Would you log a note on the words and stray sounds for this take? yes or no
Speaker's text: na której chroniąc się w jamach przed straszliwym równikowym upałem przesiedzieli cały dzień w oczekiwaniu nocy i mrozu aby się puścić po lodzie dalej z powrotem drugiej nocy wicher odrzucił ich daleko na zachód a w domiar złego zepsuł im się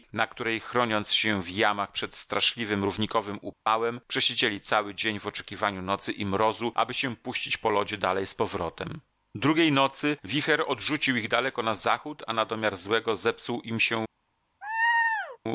yes